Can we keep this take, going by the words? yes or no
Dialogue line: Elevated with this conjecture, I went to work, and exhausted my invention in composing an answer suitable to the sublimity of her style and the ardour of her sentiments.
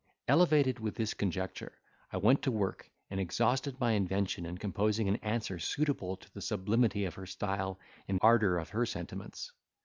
no